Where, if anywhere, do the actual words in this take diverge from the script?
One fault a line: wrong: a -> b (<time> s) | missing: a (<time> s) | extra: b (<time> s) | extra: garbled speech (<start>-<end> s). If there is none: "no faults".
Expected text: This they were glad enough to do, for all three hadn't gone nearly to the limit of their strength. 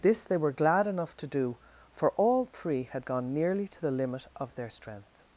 wrong: hadn't -> had (2.8 s)